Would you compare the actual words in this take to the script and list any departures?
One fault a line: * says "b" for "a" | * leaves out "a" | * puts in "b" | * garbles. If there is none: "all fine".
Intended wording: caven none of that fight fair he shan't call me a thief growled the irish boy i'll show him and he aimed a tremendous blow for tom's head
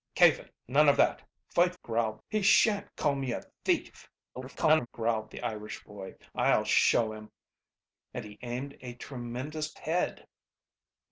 * says "growled" for "fair"
* garbles
* leaves out "blow for tom's"